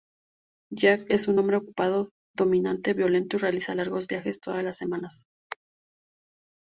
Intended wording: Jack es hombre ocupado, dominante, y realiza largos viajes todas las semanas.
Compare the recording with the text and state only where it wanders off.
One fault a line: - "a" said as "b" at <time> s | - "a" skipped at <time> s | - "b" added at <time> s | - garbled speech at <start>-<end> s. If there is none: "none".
- "un" added at 1.3 s
- "violento" added at 2.9 s